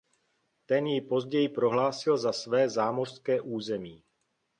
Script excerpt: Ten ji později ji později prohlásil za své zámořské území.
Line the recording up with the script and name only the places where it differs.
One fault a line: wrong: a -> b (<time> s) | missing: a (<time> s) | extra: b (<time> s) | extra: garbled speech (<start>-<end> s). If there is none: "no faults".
missing: ji později (1.5 s)